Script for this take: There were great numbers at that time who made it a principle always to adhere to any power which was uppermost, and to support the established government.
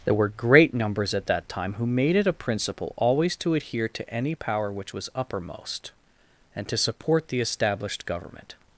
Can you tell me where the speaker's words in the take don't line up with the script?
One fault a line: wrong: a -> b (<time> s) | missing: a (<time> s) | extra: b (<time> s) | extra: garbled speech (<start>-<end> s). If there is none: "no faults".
no faults